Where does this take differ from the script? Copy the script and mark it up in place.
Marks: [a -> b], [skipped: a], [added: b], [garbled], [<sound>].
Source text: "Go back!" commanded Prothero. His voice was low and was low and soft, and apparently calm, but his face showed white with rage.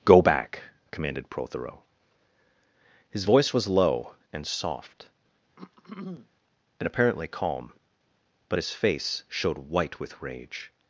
"Go back!" commanded Prothero. His voice was low and [skipped: was low and] soft, [throat clearing] and apparently calm, but his face showed white with rage.